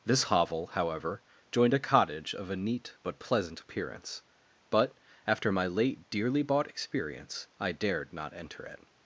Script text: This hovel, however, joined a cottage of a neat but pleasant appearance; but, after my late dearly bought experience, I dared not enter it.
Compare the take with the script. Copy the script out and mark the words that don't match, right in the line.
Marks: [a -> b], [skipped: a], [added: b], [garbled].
This hovel, however, joined a cottage of a neat but pleasant appearance; but, after my late dearly bought experience, I dared not enter it.